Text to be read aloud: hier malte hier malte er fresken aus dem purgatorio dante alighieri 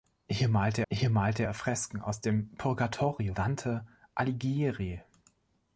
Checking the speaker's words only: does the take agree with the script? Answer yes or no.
yes